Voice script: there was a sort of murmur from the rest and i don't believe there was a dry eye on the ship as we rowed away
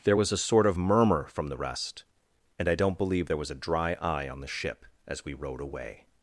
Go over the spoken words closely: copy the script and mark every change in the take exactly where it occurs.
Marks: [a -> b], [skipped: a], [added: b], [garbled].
there was a sort of murmur from the rest and i don't believe there was a dry eye on the ship as we rowed away